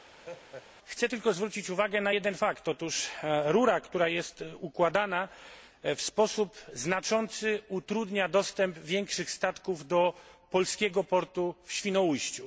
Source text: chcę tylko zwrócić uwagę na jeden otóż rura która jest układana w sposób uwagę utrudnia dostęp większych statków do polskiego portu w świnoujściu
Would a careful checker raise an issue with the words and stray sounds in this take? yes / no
yes